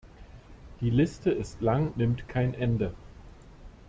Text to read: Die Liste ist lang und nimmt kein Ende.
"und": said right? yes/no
no